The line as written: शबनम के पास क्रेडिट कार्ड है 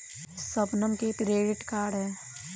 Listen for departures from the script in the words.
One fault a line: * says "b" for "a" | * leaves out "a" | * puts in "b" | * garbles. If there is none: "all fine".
* leaves out "पास"